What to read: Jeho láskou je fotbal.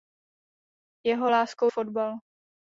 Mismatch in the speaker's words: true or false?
true